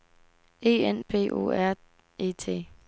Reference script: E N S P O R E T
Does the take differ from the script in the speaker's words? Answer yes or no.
yes